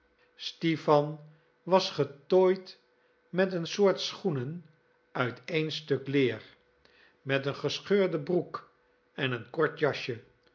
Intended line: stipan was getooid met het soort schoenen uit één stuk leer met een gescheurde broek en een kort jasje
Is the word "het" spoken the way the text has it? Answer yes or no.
no